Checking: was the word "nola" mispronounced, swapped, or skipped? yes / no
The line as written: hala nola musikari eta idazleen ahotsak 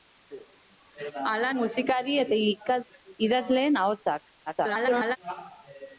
yes